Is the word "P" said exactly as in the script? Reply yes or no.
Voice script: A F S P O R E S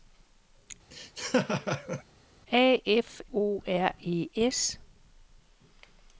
no